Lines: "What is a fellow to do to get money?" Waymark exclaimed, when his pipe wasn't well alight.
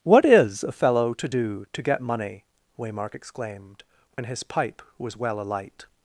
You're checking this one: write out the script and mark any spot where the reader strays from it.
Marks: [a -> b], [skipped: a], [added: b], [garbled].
"What is a fellow to do to get money?" Waymark exclaimed, when his pipe [wasn't -> was] well alight.